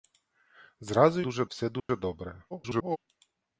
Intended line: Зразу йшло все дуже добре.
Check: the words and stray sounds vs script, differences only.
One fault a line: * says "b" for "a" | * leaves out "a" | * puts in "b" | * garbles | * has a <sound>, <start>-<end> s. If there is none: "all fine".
* says "дуже" for "йшло"
* has a dropout, 1.8-1.9 s
* garbles